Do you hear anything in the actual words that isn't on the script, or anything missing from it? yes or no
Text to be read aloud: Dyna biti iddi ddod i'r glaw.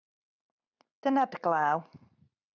yes